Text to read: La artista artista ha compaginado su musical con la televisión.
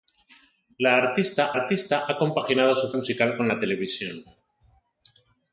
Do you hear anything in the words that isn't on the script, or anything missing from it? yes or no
no